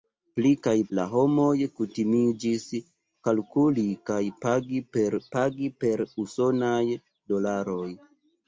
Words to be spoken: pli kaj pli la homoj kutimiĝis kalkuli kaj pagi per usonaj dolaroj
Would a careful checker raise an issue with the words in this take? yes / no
yes